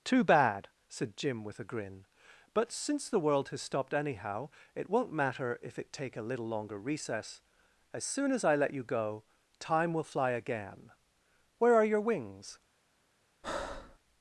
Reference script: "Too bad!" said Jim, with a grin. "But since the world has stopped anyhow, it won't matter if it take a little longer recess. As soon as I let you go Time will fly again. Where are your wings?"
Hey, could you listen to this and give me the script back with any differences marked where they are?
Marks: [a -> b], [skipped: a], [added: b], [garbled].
"Too bad!" said Jim, with a grin. "But since the world has stopped anyhow, it won't matter if it take a little longer recess. As soon as I let you go Time will fly again. Where are your wings?"